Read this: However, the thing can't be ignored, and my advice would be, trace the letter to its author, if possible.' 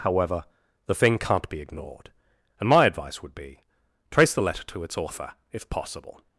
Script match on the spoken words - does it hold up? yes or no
yes